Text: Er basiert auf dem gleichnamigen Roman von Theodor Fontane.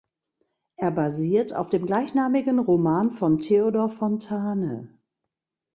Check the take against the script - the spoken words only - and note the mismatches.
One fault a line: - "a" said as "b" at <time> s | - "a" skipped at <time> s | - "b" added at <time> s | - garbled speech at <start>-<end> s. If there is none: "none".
none